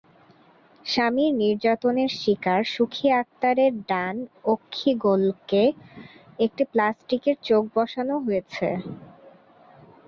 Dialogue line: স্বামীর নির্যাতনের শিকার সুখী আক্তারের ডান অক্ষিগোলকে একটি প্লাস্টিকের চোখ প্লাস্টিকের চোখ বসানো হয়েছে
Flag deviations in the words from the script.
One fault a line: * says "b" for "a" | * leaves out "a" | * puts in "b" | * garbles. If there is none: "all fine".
* leaves out "প্লাস্টিকের চোখ"